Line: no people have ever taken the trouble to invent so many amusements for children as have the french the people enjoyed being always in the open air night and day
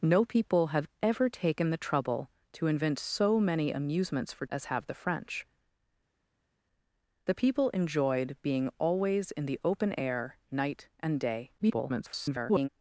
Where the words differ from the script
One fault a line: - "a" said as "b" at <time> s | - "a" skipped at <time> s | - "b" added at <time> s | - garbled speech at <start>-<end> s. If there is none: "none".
- "children" skipped at 4.5 s
- garbled speech at 11.6-12.7 s